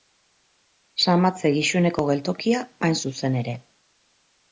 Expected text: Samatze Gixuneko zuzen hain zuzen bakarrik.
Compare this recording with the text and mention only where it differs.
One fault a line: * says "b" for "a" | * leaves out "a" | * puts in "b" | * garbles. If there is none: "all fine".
* says "geltokia" for "zuzen"
* says "ere" for "bakarrik"